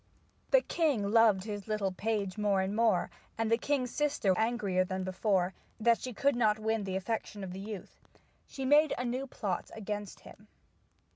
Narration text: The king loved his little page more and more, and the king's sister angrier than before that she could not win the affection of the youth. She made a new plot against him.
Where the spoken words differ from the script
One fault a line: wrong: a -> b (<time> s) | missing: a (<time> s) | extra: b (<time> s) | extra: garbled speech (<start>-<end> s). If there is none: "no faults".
no faults